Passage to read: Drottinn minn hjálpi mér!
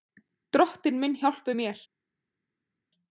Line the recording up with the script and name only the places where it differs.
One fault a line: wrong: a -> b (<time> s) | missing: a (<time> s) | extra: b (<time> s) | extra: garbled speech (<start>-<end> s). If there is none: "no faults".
no faults